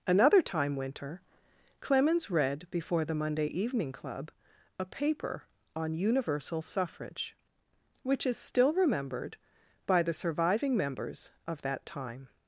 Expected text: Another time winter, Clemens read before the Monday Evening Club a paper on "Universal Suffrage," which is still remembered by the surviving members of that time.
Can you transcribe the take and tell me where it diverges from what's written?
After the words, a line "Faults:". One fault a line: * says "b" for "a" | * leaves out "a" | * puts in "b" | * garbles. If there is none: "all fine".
Another time winter, Clemens read before the Monday Evening Club a paper on "Universal Suffrage," which is still remembered by the surviving members of that time.
Faults:
all fine